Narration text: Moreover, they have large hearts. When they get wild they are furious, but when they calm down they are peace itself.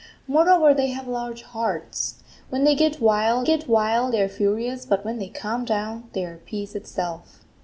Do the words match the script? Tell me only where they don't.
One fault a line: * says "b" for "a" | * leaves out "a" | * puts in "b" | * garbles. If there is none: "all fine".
* puts in "get wild"